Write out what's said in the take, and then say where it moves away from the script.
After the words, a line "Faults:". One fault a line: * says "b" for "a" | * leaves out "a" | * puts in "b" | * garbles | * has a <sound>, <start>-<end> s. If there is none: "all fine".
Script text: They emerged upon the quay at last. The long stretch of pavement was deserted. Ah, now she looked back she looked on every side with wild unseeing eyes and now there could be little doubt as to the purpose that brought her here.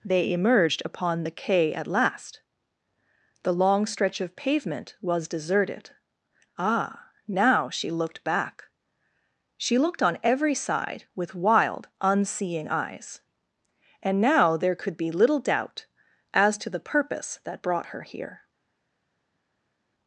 They emerged upon the quay at last. The long stretch of pavement was deserted. Ah, now she looked back she looked on every side with wild unseeing eyes and now there could be little doubt as to the purpose that brought her here.
Faults:
all fine